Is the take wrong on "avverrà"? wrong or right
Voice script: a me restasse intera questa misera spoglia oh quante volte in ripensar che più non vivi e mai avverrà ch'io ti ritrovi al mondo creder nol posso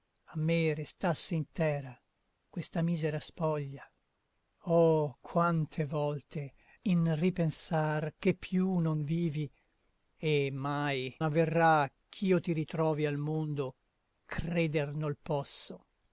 right